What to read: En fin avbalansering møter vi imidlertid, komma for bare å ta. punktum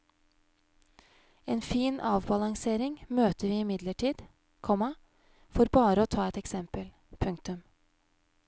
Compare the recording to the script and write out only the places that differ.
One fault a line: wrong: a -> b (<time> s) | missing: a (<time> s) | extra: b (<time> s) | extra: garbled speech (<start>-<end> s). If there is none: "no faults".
extra: et eksempel (6.3 s)